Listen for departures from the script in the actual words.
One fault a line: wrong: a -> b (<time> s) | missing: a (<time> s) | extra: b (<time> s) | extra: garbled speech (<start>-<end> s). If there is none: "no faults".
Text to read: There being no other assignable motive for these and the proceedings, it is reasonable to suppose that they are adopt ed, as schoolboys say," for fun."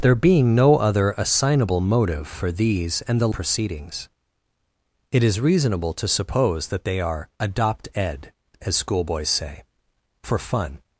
no faults